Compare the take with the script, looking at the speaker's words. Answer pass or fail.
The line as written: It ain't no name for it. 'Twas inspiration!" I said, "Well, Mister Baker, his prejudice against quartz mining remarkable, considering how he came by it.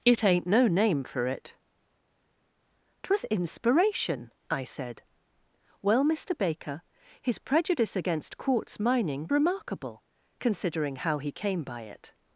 pass